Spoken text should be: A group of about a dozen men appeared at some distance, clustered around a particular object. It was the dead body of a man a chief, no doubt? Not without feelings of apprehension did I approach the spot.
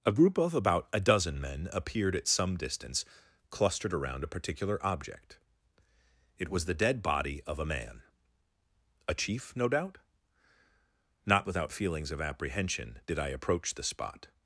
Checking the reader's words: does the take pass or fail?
pass